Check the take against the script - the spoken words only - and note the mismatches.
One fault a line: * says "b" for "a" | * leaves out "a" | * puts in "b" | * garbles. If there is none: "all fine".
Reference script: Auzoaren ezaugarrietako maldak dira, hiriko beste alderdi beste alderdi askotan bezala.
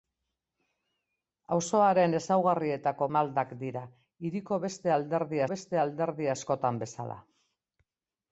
all fine